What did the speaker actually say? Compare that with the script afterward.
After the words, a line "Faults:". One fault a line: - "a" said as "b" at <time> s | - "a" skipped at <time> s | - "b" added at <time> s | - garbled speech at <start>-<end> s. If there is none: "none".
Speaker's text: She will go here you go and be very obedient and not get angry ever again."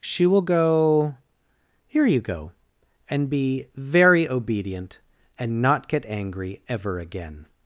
She will go here you go and be very obedient and not get angry ever again."
Faults:
none